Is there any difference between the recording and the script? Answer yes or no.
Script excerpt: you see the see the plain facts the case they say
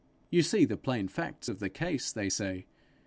yes